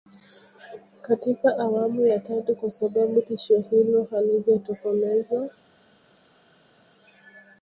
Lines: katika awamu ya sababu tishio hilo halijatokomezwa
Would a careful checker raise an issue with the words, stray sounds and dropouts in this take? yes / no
yes